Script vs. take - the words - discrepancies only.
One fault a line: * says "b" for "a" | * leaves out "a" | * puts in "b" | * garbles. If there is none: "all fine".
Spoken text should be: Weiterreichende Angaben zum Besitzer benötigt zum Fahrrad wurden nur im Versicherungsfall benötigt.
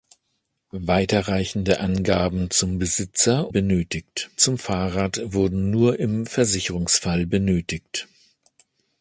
all fine